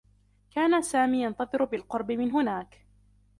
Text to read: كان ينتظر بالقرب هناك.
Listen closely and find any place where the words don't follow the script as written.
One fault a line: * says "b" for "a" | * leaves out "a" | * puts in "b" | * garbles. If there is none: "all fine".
* puts in "سامي"
* puts in "من"